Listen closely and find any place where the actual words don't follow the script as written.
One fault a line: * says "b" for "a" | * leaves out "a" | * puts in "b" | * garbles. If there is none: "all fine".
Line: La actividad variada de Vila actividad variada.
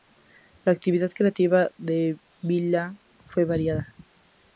* says "creativa" for "variada"
* says "fue" for "actividad"